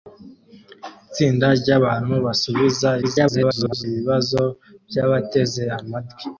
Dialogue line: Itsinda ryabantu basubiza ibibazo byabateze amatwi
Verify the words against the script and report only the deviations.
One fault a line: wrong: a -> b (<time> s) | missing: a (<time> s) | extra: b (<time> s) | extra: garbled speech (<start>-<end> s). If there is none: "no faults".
extra: garbled speech (3.0-3.8 s)